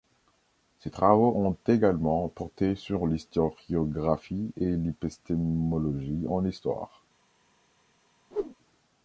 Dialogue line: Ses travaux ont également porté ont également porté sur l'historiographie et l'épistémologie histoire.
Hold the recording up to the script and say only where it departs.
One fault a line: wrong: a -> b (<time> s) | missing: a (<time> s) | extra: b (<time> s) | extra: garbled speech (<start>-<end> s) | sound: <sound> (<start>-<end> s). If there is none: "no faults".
missing: ont également porté (2.7 s)
extra: en (6.3 s)
sound: whoosh (8.3-8.6 s)